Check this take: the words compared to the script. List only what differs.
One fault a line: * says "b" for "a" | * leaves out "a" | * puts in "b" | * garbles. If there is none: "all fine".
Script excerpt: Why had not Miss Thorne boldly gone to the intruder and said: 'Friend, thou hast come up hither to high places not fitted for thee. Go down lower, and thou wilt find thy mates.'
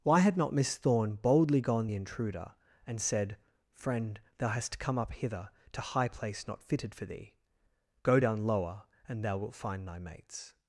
* leaves out "to"
* says "place" for "places"